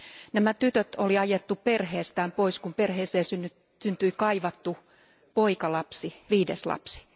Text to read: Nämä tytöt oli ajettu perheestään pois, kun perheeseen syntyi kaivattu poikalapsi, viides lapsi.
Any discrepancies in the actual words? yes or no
no